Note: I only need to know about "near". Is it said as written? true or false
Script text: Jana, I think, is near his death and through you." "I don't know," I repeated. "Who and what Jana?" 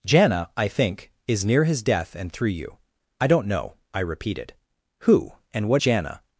true